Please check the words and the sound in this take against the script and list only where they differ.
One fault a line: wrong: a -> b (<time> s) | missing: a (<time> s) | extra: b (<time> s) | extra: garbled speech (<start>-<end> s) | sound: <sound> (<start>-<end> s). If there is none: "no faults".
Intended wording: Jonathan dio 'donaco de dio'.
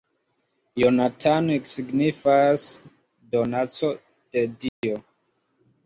wrong: dio -> signifas (1.7 s)
sound: dropout (4.7-4.8 s)